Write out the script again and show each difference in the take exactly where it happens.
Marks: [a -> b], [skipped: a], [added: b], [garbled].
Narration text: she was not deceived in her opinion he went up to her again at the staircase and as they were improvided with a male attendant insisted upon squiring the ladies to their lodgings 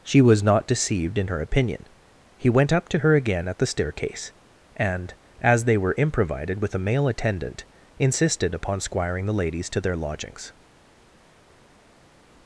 she was not deceived in her opinion he went up to her again at the staircase and as they were improvided with a male attendant insisted upon squiring the ladies to their lodgings